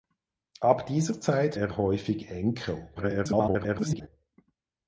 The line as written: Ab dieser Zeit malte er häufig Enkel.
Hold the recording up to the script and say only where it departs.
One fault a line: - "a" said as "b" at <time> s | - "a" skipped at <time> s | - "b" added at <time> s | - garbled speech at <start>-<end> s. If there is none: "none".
- "malte" skipped at 1.6 s
- garbled speech at 2.9-4.1 s